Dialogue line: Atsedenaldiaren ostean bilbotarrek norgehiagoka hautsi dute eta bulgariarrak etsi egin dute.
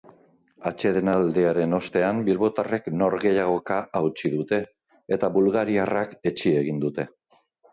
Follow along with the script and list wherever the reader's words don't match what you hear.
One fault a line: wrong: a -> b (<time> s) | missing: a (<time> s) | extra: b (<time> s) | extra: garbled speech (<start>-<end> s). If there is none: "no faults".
no faults